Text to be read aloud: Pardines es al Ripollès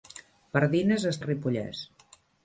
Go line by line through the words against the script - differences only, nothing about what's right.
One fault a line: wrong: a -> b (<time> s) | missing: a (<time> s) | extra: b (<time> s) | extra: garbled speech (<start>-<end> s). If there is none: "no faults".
no faults